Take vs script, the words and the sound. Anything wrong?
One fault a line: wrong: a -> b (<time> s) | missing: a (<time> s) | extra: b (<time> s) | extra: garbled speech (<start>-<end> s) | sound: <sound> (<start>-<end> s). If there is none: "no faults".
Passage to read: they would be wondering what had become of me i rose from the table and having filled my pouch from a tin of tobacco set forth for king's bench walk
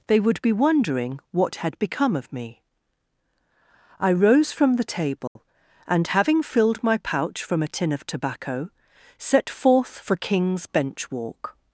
sound: dropout (5.3-5.4 s)